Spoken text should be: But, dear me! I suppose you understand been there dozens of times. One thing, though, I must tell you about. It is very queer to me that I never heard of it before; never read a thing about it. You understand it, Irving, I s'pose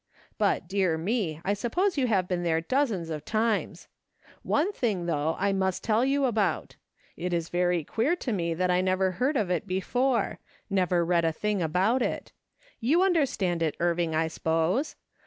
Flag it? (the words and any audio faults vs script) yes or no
yes